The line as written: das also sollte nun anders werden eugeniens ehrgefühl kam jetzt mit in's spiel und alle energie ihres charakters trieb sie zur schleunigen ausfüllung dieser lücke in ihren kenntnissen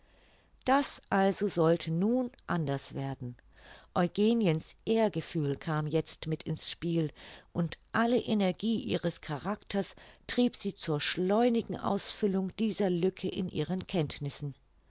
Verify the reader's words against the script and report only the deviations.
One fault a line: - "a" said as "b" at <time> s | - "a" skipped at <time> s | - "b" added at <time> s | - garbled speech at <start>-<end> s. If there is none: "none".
none